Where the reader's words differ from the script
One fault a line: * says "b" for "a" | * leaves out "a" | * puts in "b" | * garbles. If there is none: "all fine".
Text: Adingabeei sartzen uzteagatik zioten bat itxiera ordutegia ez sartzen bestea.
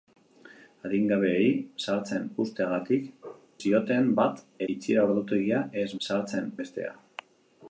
all fine